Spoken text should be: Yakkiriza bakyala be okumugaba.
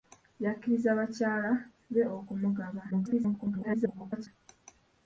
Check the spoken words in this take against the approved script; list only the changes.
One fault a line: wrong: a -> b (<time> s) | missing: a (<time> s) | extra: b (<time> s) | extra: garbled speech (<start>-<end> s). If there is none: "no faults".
extra: garbled speech (2.9-4.3 s)